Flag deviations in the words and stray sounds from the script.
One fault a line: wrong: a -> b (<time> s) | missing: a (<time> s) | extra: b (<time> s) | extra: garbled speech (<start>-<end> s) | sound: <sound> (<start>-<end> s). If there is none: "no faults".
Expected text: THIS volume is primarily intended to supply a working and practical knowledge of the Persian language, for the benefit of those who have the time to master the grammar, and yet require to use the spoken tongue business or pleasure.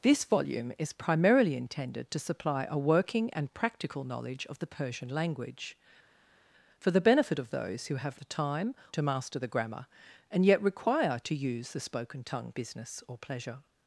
no faults